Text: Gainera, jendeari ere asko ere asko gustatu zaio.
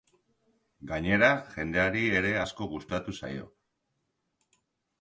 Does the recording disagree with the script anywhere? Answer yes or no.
yes